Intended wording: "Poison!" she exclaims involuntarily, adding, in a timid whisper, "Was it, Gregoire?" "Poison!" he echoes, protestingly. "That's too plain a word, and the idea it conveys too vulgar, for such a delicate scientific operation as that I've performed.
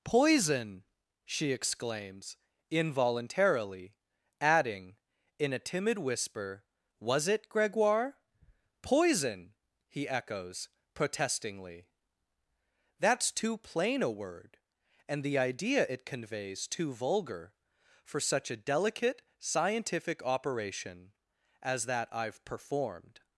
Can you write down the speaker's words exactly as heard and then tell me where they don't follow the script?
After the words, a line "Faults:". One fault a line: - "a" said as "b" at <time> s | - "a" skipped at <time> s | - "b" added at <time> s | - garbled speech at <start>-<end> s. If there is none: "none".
"Poison!" she exclaims involuntarily, adding, in a timid whisper, "Was it, Gregoire?" "Poison!" he echoes, protestingly. "That's too plain a word, and the idea it conveys too vulgar, for such a delicate scientific operation as that I've performed.
Faults:
none